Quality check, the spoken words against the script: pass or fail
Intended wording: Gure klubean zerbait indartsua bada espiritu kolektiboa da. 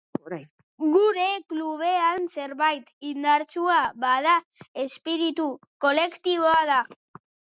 pass